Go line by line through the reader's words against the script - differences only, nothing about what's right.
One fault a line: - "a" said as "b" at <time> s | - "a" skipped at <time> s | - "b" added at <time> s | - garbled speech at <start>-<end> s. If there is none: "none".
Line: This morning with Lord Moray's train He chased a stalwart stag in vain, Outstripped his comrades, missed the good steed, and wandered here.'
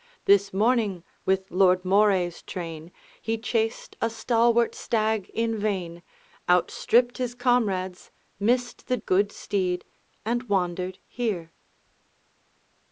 none